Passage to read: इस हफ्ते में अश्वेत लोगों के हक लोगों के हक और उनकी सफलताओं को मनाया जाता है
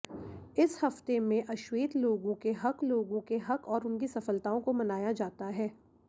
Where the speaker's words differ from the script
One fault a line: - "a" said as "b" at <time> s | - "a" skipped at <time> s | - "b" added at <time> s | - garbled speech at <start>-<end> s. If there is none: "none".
none